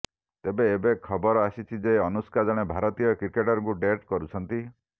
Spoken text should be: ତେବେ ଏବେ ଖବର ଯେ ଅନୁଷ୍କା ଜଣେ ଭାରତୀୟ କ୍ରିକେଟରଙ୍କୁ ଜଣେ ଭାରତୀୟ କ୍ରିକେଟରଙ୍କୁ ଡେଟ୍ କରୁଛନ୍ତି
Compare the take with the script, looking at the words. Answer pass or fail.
fail